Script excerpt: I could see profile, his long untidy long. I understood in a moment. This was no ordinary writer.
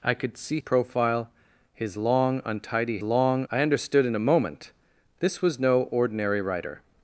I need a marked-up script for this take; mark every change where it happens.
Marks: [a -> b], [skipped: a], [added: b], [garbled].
I could see profile, his long untidy long. I understood in a moment. This was no ordinary writer.